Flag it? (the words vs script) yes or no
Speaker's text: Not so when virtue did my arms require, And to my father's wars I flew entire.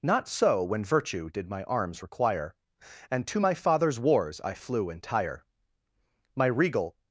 yes